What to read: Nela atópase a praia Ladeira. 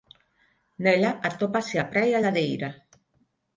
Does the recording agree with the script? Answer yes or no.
yes